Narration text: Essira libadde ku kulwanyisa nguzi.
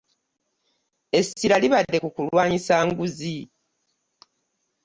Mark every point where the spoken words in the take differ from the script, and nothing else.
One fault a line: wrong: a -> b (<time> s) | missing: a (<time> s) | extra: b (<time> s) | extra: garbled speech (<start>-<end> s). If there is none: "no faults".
no faults